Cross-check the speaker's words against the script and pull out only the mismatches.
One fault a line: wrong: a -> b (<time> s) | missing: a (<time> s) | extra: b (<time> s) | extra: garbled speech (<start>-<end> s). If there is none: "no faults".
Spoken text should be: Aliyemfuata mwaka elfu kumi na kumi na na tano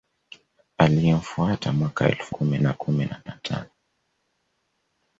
no faults